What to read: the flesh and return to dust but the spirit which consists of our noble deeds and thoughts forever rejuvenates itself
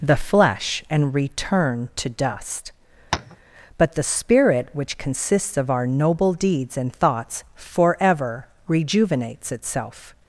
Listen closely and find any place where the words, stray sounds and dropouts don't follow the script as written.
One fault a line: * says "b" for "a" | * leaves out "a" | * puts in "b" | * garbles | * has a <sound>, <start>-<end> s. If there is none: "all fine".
* has a tap, 3.1-3.4 s